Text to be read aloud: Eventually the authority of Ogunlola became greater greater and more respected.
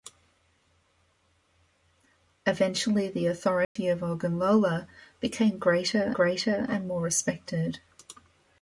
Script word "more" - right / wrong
right